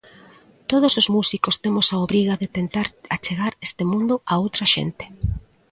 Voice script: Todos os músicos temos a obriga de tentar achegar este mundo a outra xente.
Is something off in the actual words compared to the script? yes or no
no